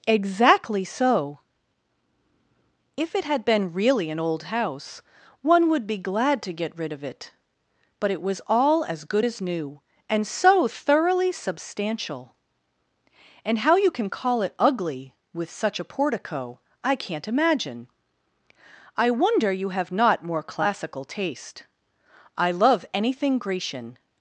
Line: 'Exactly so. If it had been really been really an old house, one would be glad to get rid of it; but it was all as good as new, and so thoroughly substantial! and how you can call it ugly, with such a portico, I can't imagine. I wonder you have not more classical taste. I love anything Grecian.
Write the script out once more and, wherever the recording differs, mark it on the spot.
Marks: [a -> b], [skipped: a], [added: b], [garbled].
'Exactly so. If it had been really [skipped: been really] an old house, one would be glad to get rid of it; but it was all as good as new, and so thoroughly substantial! and how you can call it ugly, with such a portico, I can't imagine. I wonder you have not more classical taste. I love anything Grecian.